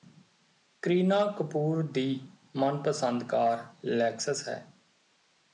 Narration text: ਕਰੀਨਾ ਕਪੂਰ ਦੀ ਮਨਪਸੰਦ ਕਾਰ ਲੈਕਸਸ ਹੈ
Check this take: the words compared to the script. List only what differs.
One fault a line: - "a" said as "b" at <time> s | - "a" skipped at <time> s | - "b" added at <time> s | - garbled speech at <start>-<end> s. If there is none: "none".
none